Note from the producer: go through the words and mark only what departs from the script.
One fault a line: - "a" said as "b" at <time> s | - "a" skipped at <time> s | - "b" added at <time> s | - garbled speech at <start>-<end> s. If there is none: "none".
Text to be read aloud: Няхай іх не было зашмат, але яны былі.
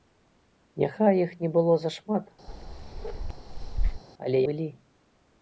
- "яны" skipped at 4.4 s